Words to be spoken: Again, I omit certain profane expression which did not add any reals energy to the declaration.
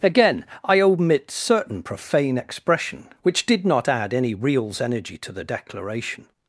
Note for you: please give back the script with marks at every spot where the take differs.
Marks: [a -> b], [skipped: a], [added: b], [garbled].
Again, I omit certain profane expression which did not add any reals energy to the declaration.